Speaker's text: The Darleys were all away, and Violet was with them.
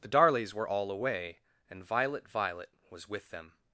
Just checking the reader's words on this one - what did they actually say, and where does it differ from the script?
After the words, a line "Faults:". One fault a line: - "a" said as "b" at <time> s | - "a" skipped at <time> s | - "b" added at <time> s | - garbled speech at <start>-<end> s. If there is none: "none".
The Darleys were all away, and Violet Violet was with them.
Faults:
- "Violet" added at 2.3 s